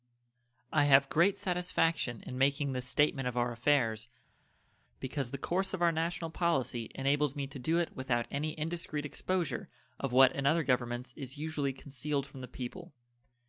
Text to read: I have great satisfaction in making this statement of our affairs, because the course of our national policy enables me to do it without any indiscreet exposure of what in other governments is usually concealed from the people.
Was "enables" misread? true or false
false